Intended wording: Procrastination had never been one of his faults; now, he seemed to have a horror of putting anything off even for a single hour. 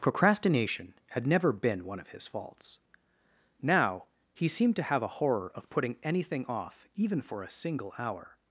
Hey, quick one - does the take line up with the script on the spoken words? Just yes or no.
yes